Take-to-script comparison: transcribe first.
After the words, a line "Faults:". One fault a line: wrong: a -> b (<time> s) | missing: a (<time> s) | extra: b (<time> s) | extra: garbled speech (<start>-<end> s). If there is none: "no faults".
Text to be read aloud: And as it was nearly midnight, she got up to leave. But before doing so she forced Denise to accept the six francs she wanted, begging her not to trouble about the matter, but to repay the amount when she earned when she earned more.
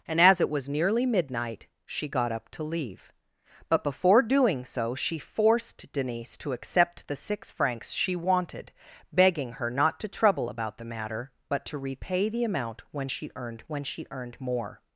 And as it was nearly midnight, she got up to leave. But before doing so she forced Denise to accept the six francs she wanted, begging her not to trouble about the matter, but to repay the amount when she earned when she earned more.
Faults:
no faults